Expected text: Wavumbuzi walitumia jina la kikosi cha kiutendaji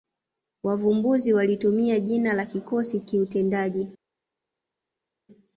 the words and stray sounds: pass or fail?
fail